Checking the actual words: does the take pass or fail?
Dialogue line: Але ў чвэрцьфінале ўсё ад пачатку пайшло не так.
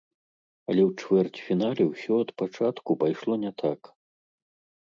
pass